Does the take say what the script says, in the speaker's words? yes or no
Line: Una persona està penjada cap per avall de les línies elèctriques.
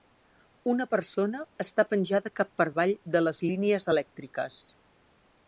yes